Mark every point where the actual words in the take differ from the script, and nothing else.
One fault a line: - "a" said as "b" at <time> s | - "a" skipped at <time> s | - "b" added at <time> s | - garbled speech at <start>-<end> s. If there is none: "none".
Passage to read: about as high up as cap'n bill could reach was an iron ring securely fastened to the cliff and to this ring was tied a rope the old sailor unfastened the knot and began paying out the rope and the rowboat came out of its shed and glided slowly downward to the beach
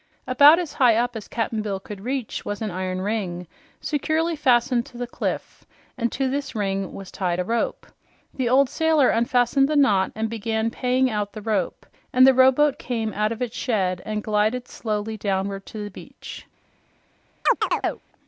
none